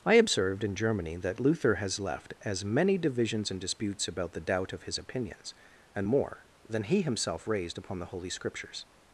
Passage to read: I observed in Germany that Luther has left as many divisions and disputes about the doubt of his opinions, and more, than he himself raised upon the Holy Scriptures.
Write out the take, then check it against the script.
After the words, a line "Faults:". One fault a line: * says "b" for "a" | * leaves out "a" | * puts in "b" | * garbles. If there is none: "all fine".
I observed in Germany that Luther has left as many divisions and disputes about the doubt of his opinions, and more, than he himself raised upon the Holy Scriptures.
Faults:
all fine